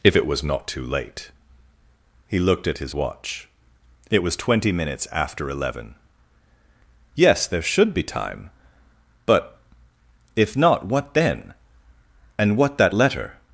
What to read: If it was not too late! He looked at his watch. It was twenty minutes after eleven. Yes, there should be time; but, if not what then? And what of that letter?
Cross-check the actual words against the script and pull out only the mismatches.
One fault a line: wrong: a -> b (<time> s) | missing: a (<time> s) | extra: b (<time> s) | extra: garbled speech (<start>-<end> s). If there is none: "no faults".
missing: of (12.8 s)